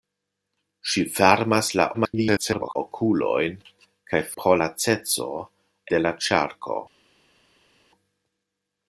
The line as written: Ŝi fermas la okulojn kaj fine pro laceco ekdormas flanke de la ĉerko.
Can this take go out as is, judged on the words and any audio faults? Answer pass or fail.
fail